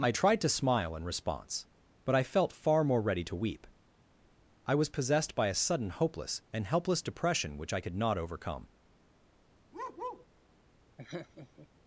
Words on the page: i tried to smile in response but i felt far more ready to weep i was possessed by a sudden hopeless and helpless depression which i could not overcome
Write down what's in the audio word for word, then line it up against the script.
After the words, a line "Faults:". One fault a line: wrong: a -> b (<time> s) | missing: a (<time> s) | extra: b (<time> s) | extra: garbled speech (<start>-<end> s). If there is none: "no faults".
i tried to smile in response but i felt far more ready to weep i was possessed by a sudden hopeless and helpless depression which i could not overcome
Faults:
no faults